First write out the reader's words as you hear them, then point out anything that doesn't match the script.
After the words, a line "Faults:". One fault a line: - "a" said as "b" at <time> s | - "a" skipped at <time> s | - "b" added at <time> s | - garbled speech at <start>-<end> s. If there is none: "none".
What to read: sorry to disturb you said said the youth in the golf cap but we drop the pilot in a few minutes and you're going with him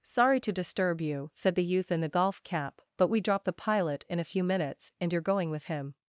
sorry to disturb you said the youth in the golf cap but we drop the pilot in a few minutes and you're going with him
Faults:
- "said" skipped at 1.5 s